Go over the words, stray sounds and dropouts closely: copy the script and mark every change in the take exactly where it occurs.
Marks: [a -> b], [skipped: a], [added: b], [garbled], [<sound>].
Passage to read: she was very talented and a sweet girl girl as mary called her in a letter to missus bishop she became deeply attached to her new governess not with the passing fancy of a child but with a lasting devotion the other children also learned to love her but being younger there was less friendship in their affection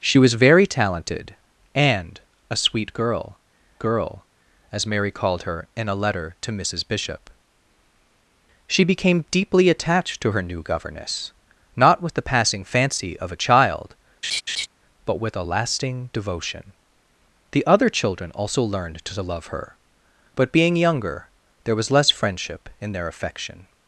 she was very talented and a sweet girl girl as mary called her in a letter to missus bishop she became deeply attached to her new governess not with the passing fancy of a child [laugh] but with a lasting devotion the other children also learned to love her but being younger there was less friendship in their affection